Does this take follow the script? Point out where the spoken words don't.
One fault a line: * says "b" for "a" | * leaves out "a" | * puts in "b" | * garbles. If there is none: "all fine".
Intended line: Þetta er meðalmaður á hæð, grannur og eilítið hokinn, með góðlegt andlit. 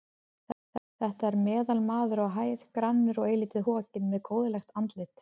all fine